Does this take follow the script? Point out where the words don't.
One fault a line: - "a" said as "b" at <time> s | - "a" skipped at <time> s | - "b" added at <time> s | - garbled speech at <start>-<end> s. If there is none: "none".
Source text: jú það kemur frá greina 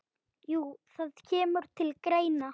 - "frá" said as "til" at 1.8 s